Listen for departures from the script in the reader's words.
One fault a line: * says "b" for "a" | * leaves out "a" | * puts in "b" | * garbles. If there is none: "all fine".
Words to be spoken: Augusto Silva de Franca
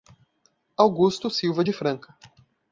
all fine